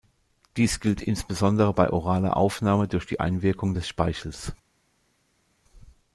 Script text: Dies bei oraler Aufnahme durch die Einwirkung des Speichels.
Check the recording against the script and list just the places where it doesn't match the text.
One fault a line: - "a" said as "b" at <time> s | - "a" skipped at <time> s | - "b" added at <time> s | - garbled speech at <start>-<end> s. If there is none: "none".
- "gilt insbesondere" added at 0.8 s